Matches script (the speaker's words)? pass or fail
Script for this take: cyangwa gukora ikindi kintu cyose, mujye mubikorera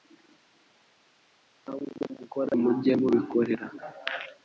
fail